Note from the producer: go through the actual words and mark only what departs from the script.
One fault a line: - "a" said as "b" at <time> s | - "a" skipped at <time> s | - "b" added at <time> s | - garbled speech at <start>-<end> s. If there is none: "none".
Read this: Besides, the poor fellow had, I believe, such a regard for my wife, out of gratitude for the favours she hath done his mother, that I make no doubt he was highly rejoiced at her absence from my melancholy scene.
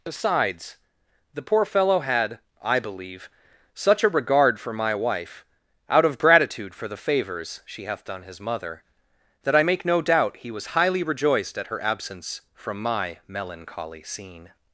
none